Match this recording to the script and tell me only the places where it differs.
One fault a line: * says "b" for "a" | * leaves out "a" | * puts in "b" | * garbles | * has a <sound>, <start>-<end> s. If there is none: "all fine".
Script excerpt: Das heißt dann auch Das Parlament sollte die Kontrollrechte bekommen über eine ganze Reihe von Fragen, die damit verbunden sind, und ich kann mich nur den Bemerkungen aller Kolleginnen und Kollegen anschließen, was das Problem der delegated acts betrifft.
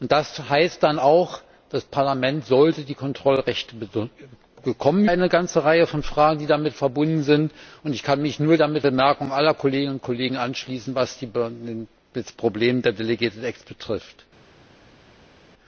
* leaves out "über"
* says "damit" for "den"